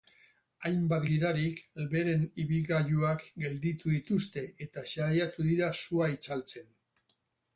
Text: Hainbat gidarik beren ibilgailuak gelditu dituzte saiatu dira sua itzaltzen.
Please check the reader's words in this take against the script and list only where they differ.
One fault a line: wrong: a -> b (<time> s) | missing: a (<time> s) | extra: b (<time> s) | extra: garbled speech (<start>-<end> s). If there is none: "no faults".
extra: eta (4.7 s)